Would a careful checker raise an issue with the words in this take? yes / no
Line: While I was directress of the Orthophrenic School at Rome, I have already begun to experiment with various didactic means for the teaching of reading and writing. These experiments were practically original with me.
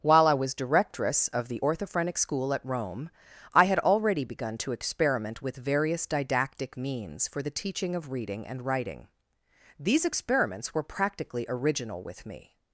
yes